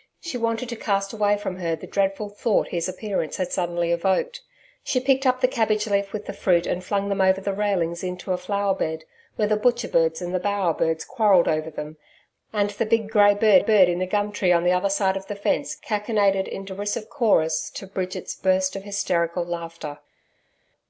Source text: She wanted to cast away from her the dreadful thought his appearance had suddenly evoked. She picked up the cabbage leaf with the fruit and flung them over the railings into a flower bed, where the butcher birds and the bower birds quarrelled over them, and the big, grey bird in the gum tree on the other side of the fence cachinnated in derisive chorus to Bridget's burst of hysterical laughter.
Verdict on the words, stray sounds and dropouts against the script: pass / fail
fail